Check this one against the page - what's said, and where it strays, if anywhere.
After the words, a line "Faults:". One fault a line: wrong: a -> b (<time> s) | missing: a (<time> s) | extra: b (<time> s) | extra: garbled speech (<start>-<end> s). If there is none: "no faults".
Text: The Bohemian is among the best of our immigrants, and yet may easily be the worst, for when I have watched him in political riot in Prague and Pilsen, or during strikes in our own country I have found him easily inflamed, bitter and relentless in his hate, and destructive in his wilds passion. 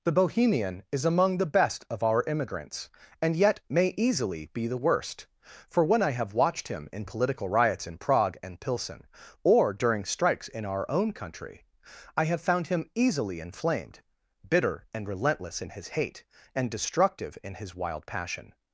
The Bohemian is among the best of our immigrants, and yet may easily be the worst, for when I have watched him in political riots in Prague and Pilsen, or during strikes in our own country I have found him easily inflamed, bitter and relentless in his hate, and destructive in his wild passion.
Faults:
wrong: riot -> riots (7.5 s)
wrong: wilds -> wild (17.7 s)